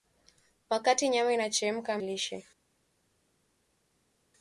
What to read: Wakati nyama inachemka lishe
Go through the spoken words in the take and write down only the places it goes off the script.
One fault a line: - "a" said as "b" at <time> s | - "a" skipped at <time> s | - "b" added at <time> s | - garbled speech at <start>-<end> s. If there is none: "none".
none